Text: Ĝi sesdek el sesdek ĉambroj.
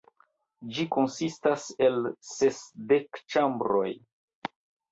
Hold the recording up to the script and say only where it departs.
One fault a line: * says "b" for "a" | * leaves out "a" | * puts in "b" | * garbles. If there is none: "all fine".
* says "konsistas" for "sesdek"